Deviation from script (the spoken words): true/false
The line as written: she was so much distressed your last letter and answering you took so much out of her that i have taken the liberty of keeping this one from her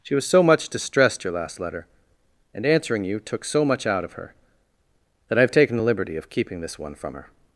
false